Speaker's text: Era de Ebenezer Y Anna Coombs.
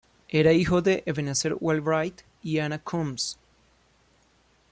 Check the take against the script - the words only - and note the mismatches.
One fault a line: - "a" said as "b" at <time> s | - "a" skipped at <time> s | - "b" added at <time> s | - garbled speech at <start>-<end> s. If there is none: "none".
- "hijo" added at 0.5 s
- "Wheelwright" added at 1.6 s